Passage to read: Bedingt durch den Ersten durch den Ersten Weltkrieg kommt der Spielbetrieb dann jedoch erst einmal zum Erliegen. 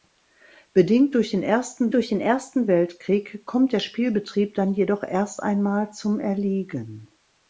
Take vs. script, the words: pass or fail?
pass